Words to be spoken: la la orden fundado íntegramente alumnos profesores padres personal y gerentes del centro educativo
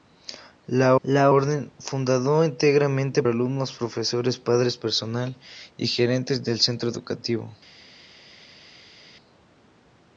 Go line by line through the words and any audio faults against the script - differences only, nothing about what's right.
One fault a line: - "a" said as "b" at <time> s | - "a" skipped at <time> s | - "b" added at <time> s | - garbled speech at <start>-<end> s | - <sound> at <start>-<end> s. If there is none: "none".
none